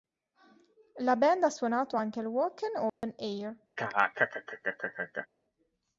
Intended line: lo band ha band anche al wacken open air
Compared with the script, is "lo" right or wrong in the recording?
wrong